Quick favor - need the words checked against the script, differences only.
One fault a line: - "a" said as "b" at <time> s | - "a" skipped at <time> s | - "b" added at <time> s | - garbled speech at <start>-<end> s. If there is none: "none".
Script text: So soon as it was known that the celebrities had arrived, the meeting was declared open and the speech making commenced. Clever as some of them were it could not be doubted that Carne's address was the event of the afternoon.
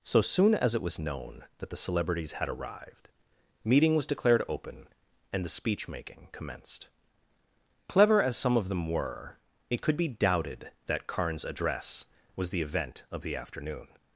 - "the" skipped at 3.1 s
- "not" skipped at 9.9 s